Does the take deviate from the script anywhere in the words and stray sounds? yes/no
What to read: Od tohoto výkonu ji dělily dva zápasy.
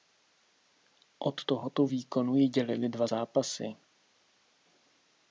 no